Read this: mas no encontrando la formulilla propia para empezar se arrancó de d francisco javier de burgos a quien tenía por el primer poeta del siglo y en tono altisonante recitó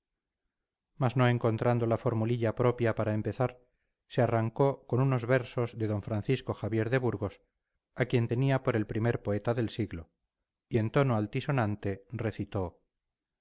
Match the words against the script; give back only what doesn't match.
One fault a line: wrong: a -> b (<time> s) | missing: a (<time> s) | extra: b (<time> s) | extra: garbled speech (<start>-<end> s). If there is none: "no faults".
extra: con unos versos (4.9 s)